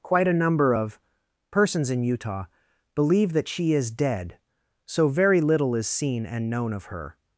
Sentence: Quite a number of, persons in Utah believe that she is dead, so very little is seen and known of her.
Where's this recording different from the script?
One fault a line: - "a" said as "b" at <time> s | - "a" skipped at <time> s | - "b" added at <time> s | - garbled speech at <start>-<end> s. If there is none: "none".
none